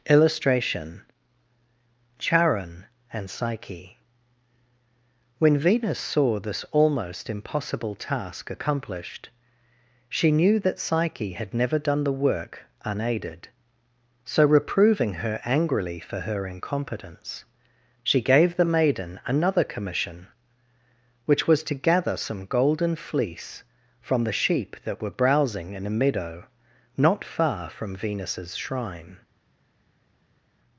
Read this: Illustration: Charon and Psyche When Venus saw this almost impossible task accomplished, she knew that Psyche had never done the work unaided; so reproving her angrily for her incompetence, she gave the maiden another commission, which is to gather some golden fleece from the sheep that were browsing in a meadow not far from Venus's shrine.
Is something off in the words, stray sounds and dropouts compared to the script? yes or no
yes